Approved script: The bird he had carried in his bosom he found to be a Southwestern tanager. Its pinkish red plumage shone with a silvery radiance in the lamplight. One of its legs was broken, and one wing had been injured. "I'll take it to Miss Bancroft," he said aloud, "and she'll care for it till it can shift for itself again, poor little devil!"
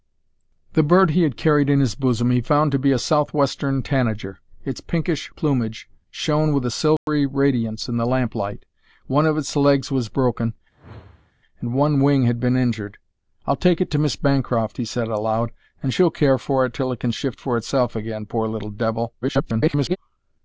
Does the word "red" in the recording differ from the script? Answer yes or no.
yes